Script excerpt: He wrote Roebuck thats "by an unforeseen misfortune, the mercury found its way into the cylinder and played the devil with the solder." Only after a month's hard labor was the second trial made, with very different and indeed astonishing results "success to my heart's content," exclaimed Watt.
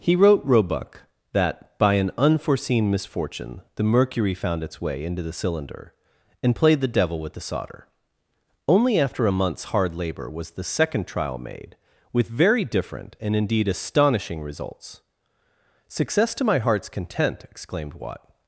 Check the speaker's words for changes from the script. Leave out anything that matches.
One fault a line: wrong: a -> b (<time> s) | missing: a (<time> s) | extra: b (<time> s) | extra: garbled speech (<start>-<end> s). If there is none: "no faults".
wrong: thats -> that (1.3 s)